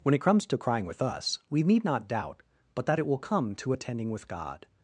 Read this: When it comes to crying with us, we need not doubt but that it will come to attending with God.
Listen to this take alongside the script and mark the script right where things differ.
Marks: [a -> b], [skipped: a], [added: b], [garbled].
When it comes to crying with us, we need not doubt but that it will come to attending with God.